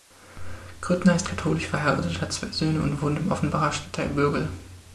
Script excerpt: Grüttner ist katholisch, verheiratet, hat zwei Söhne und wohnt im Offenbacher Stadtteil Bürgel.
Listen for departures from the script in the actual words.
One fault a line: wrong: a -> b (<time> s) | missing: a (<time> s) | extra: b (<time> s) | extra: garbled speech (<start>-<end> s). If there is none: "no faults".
no faults